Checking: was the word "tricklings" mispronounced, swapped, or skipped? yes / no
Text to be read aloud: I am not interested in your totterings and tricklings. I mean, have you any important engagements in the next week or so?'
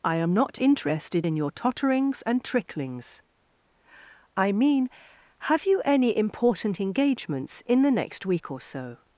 no